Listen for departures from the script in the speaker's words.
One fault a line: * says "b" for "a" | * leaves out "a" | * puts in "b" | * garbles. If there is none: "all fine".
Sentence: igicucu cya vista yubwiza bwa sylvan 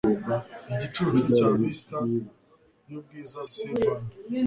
* leaves out "bwa"